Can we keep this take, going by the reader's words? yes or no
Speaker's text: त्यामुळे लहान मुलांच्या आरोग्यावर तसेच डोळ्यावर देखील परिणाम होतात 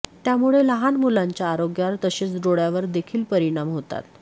yes